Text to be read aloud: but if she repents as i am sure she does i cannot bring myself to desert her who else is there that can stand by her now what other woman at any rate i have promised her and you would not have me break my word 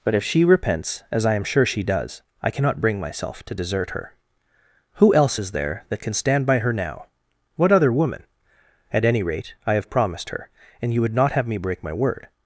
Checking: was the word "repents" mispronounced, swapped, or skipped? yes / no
no